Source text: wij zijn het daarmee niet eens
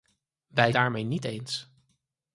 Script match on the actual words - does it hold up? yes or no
no